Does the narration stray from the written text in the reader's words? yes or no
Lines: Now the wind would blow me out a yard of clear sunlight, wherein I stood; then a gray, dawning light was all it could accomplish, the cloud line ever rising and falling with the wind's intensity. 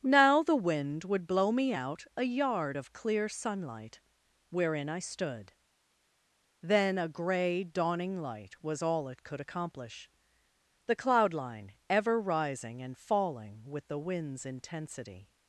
no